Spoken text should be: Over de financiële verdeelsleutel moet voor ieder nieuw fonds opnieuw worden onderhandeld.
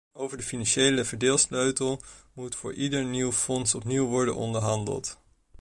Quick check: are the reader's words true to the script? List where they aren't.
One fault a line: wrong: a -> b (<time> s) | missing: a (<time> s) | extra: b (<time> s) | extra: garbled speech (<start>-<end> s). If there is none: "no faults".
no faults